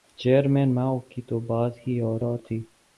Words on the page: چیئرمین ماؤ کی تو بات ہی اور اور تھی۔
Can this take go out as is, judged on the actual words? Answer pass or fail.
pass